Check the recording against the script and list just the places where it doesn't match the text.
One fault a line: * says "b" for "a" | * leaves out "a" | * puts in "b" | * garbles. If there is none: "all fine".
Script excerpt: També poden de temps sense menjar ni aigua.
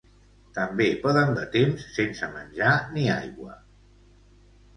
all fine